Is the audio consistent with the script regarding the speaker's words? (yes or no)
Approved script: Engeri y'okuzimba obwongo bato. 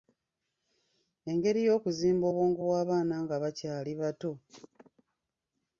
no